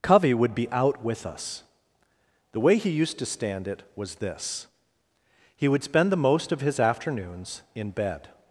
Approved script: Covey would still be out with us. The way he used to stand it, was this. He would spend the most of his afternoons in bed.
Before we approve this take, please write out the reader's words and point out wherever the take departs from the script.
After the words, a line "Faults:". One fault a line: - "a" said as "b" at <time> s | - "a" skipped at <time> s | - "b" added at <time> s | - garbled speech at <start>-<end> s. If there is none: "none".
Covey would be out with us. The way he used to stand it, was this. He would spend the most of his afternoons in bed.
Faults:
- "still" skipped at 0.6 s